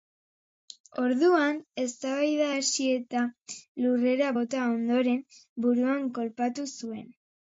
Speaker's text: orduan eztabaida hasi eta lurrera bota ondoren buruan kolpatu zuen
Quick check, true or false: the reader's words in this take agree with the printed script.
true